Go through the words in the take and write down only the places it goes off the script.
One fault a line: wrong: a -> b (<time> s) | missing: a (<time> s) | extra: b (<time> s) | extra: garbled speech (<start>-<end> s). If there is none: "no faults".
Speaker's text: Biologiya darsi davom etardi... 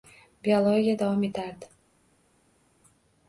missing: darsi (0.9 s)